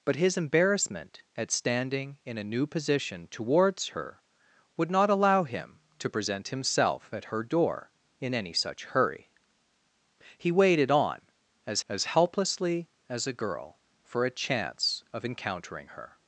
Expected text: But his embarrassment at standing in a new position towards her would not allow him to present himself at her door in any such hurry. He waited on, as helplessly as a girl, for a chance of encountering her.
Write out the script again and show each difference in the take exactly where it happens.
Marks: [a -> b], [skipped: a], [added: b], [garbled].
But his embarrassment at standing in a new position towards her would not allow him to present himself at her door in any such hurry. He waited on, as [added: as] helplessly as a girl, for a chance of encountering her.